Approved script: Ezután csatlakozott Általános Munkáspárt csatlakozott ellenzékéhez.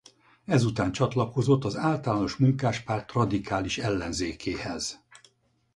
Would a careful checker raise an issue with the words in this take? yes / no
yes